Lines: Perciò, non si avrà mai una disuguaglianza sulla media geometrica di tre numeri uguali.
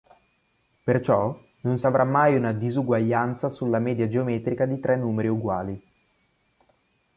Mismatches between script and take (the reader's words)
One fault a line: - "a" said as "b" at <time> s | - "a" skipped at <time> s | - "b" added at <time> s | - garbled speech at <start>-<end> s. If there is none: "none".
none